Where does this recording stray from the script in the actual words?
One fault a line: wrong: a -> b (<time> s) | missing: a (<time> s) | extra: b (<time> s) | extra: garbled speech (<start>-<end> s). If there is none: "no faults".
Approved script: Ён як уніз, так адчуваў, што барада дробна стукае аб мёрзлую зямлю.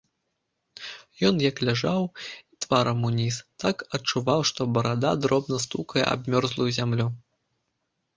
extra: ляжаў тварам (1.7 s)